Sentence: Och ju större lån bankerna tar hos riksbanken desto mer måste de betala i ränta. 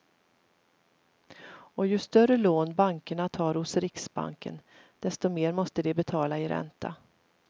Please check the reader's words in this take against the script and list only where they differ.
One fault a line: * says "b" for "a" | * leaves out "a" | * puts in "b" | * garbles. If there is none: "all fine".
all fine